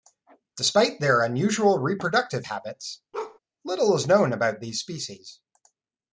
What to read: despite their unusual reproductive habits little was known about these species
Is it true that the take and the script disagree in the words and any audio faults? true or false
true